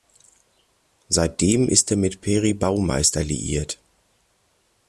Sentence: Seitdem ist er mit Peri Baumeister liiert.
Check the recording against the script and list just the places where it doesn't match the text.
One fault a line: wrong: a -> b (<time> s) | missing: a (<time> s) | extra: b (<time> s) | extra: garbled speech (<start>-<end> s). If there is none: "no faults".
no faults